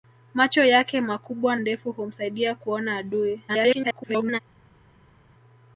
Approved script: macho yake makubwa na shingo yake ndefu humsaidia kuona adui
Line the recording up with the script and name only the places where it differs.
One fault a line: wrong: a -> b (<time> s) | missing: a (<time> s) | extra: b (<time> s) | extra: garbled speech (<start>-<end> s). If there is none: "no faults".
missing: na shingo yake (1.6 s)
extra: garbled speech (3.5-4.4 s)